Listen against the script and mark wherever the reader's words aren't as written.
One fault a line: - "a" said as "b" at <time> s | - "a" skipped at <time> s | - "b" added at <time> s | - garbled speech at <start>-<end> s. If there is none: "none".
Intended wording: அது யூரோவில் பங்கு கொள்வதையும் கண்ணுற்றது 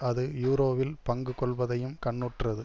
none